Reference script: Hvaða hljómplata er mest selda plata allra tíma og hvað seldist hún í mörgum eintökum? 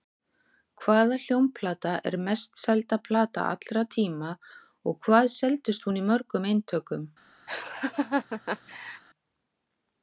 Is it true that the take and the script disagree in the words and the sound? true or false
true